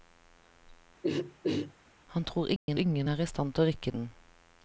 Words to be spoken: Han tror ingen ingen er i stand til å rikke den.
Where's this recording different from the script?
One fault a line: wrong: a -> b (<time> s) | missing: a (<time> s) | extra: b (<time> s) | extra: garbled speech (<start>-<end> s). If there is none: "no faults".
no faults